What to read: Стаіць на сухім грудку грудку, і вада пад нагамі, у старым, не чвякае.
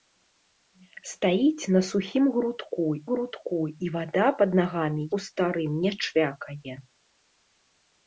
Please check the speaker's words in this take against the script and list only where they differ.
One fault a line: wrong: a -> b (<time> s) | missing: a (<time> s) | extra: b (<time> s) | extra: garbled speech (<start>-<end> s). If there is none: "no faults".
no faults